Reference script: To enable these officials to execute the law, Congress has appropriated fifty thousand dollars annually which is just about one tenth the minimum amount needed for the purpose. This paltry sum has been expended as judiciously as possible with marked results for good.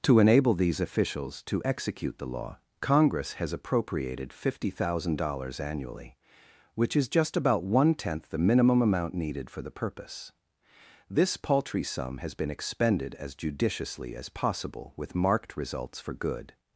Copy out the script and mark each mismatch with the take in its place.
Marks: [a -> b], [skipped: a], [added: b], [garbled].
To enable these officials to execute the law, Congress has appropriated fifty thousand dollars annually which is just about one tenth the minimum amount needed for the purpose. This paltry sum has been expended as judiciously as possible with marked results for good.